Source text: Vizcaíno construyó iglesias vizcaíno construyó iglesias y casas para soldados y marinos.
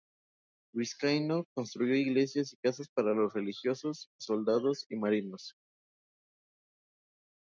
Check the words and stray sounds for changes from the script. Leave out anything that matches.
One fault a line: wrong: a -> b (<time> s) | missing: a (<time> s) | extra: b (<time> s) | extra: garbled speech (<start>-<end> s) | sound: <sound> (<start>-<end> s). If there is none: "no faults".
missing: vizcaíno construyó iglesias (2.5 s)
extra: los religiosos (3.1 s)